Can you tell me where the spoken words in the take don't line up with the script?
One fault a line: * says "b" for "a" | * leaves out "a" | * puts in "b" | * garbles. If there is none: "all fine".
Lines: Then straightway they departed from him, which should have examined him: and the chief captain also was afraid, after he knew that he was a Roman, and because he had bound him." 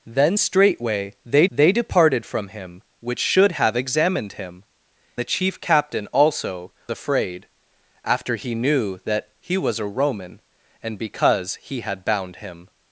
* puts in "they"
* leaves out "and"
* leaves out "was"